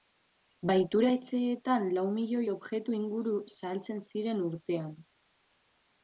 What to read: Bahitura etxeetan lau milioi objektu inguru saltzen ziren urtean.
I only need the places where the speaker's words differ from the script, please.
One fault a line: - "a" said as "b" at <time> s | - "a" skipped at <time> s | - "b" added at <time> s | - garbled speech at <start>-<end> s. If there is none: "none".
none